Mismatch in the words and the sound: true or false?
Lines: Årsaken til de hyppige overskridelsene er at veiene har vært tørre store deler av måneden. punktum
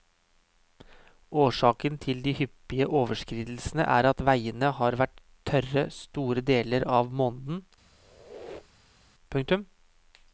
true